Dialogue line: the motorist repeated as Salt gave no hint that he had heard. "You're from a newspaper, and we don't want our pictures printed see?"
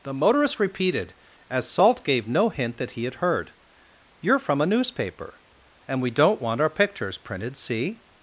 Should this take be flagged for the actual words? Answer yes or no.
no